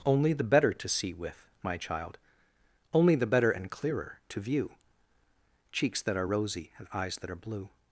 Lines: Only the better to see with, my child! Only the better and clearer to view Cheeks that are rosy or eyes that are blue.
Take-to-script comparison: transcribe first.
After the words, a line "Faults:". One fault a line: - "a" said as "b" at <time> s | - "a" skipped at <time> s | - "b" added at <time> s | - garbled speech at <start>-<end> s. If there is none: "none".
Only the better to see with, my child! Only the better and clearer to view Cheeks that are rosy and eyes that are blue.
Faults:
- "or" said as "and" at 6.8 s